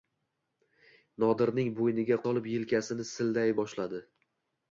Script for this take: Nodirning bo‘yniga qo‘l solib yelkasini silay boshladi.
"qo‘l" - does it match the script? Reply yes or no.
no